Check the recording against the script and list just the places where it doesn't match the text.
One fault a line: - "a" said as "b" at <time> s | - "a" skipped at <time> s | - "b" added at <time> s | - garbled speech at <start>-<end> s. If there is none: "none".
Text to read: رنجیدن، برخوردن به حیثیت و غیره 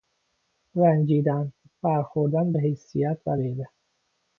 none